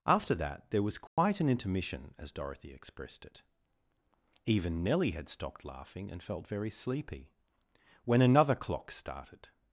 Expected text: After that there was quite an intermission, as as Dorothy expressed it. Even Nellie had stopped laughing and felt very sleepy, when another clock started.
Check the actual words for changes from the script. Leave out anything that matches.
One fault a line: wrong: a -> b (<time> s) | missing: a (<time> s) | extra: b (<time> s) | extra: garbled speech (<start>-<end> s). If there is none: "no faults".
missing: as (2.3 s)